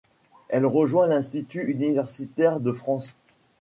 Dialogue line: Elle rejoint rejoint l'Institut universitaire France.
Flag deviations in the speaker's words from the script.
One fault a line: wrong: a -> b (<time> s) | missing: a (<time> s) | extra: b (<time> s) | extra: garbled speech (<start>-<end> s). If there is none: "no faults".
missing: rejoint (1.1 s)
extra: de (2.6 s)